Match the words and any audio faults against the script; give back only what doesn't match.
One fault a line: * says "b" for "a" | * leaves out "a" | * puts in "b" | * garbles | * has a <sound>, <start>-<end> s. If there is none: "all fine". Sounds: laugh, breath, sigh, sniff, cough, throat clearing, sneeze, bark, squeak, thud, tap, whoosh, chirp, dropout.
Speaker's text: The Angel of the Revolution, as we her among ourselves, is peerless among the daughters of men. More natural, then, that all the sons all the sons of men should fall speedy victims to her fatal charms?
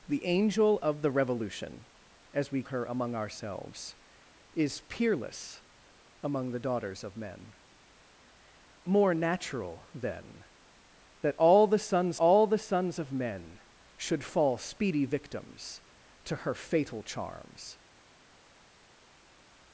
all fine